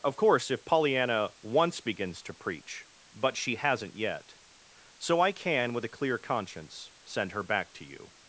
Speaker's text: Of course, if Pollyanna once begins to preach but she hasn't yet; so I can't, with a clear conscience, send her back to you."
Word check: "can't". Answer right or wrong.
wrong